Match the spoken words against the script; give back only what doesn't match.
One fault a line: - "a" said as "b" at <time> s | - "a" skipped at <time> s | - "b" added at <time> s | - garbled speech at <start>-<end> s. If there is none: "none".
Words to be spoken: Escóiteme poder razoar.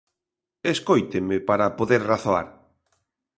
- "para" added at 1.5 s